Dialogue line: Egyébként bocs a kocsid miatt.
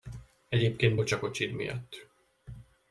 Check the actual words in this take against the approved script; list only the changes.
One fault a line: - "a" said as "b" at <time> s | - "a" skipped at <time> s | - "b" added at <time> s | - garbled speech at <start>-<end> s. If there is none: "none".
none